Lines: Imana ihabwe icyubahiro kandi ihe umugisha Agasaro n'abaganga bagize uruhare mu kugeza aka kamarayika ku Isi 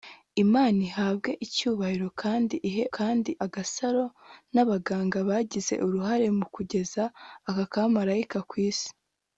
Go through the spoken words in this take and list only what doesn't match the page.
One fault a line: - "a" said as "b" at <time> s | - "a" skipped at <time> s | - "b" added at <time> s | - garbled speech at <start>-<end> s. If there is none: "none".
- "umugisha" said as "kandi" at 3.0 s